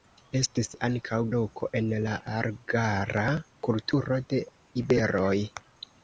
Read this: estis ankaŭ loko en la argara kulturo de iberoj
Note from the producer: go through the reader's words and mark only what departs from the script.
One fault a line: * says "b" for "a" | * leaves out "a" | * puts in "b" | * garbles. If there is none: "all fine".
all fine